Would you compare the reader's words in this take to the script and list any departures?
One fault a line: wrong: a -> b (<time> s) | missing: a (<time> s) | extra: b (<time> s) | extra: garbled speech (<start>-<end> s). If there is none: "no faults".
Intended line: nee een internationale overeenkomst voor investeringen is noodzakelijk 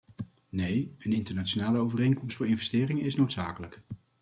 no faults